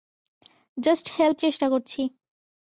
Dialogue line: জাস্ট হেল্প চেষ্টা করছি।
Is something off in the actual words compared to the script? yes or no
no